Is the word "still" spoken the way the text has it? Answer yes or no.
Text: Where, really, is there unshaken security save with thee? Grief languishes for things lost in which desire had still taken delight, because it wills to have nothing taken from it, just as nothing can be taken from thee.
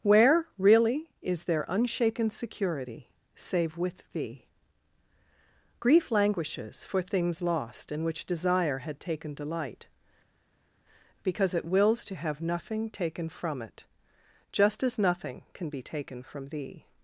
no